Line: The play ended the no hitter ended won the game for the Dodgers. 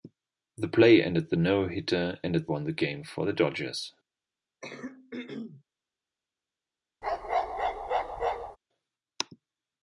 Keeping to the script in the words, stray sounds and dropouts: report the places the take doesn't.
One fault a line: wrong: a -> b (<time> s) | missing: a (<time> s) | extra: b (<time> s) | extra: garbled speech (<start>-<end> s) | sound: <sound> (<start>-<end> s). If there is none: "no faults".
sound: throat clearing (4.6-5.6 s)
sound: bark (7.0-8.6 s)